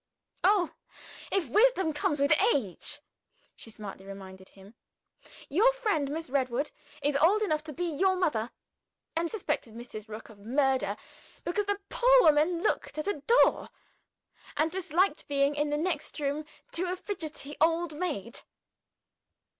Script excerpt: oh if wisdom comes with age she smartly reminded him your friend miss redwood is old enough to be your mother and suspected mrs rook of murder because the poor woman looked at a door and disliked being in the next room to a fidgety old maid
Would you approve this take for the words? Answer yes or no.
yes